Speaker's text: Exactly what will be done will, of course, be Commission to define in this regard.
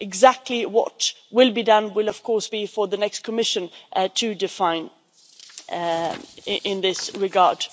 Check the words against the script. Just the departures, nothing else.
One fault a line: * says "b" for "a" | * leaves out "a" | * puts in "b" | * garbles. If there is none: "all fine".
* puts in "for the next"